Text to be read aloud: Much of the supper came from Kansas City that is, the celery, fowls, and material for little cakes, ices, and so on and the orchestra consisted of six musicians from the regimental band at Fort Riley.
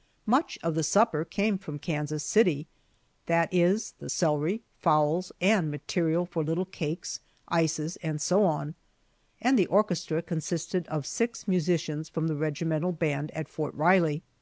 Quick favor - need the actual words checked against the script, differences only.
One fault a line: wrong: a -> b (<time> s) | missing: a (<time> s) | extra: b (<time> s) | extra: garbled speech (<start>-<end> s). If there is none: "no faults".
no faults